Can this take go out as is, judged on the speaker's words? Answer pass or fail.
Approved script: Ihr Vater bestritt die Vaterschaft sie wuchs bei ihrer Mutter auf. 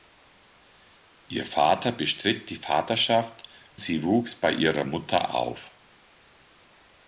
pass